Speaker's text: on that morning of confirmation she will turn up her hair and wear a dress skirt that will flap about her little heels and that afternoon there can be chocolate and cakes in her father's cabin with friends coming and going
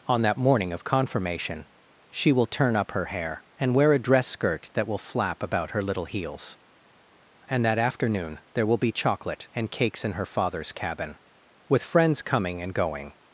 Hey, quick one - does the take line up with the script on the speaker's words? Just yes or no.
no